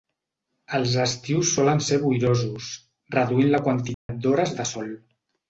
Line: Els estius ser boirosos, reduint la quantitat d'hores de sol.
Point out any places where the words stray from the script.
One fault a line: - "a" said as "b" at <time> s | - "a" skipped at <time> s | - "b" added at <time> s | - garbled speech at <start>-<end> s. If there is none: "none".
- "solen" added at 1.6 s